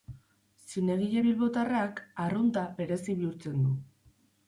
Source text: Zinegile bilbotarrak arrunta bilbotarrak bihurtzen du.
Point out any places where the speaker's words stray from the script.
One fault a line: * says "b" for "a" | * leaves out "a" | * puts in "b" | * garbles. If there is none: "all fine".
* says "berezi" for "bilbotarrak"